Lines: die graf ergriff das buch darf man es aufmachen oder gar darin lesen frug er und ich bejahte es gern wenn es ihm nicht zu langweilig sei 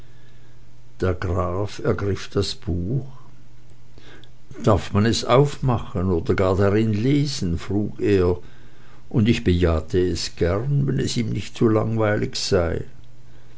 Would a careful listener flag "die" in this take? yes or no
yes